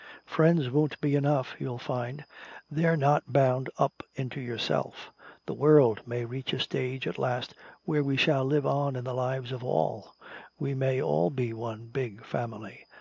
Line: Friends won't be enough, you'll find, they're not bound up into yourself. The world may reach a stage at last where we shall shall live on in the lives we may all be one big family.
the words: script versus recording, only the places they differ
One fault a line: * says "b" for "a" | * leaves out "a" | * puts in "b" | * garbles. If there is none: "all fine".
* leaves out "shall"
* puts in "of all"